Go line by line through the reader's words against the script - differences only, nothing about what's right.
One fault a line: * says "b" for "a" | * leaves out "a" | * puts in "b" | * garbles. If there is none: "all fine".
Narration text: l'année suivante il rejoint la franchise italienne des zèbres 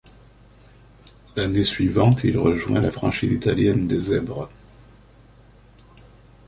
all fine